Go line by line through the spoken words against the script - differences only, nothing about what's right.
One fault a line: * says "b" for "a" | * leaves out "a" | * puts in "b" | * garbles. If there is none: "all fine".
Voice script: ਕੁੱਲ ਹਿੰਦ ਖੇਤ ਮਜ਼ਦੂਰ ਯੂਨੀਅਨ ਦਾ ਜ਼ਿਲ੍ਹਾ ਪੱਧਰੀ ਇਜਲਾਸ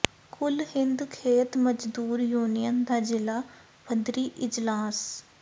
all fine